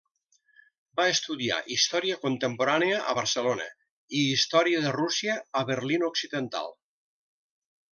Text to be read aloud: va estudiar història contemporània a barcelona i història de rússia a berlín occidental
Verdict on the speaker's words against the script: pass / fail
pass